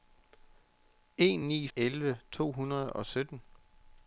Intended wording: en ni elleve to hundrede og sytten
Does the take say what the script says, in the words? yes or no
yes